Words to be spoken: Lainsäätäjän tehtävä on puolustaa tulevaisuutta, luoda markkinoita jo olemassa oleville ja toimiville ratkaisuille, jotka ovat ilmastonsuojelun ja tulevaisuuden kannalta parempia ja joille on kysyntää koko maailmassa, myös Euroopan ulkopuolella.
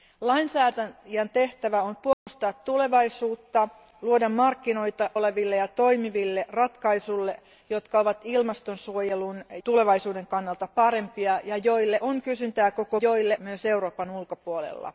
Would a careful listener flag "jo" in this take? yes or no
yes